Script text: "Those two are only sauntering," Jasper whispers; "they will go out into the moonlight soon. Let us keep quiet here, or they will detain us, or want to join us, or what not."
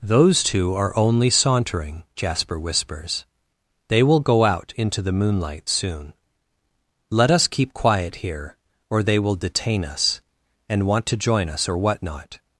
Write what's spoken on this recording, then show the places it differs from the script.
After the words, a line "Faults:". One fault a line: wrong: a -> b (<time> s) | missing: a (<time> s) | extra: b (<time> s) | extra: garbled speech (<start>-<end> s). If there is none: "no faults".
"Those two are only sauntering," Jasper whispers; "they will go out into the moonlight soon. Let us keep quiet here, or they will detain us, and want to join us, or what not."
Faults:
wrong: or -> and (10.7 s)